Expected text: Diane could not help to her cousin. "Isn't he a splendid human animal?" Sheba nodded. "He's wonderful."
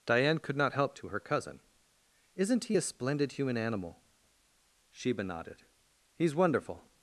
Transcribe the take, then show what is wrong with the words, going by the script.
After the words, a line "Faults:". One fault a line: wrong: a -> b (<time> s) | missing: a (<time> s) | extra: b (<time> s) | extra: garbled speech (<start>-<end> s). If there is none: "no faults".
Diane could not help to her cousin. "Isn't he a splendid human animal?" Sheba nodded. "He's wonderful."
Faults:
no faults